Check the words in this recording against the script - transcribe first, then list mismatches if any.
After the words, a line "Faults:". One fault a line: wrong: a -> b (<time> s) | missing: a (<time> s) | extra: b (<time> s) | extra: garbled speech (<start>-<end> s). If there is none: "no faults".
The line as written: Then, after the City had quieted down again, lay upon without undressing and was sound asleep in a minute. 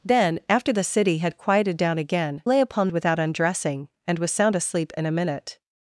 Then, after the City had quieted down again, lay upon without undressing and was sound asleep in a minute.
Faults:
no faults